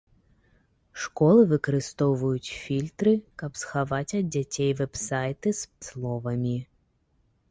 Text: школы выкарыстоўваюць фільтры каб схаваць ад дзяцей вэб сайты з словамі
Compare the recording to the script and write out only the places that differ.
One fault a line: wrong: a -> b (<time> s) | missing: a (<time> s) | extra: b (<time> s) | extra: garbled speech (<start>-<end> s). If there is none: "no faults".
no faults